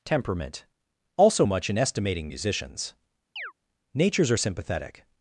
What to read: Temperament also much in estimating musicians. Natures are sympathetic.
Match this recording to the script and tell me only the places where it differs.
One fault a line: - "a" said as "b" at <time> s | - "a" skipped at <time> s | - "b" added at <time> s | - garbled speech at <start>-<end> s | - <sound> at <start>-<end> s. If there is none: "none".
- chirp at 3.4-3.5 s